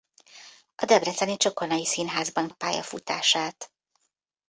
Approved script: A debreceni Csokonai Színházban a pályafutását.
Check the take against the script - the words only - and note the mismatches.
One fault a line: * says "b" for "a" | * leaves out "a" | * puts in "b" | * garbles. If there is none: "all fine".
all fine